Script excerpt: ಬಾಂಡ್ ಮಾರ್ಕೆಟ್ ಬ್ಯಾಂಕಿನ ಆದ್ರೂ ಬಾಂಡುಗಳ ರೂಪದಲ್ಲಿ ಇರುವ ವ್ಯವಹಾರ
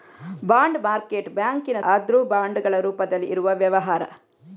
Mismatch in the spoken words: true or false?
false